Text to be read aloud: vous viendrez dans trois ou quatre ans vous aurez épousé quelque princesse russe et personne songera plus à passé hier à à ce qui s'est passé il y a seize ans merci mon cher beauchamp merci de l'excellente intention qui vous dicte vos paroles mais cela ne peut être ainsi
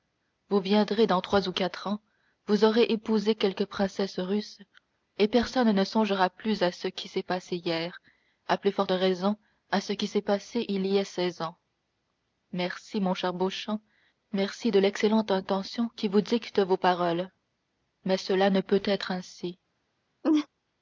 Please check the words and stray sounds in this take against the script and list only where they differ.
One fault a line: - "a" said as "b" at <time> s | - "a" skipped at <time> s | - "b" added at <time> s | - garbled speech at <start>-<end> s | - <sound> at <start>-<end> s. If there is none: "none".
- "ne" added at 5.7 s
- "ce qui s'est" added at 6.7 s
- "plus forte raison" added at 8.6 s
- laugh at 20.2-20.5 s